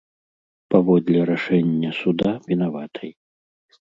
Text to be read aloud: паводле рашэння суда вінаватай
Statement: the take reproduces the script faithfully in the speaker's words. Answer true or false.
true